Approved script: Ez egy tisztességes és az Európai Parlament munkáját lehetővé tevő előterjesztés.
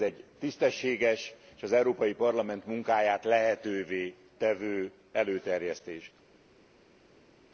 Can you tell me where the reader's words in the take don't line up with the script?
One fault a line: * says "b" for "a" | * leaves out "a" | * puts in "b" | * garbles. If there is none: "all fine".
all fine